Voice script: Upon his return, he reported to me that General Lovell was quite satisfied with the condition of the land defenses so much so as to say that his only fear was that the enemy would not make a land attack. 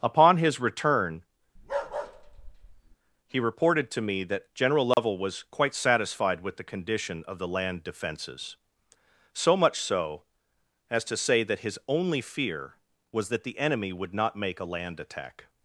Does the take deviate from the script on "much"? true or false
false